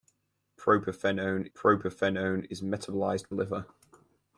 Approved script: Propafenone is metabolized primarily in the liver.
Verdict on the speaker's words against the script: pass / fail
fail